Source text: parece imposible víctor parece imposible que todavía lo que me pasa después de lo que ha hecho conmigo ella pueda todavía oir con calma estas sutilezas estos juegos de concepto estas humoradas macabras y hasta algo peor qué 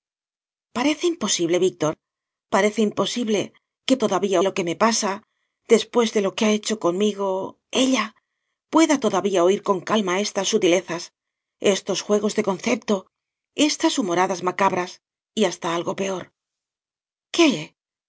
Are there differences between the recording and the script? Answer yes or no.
no